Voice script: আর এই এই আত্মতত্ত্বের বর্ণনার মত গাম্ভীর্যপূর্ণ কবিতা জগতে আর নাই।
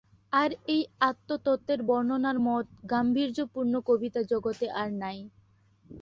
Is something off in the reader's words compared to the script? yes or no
yes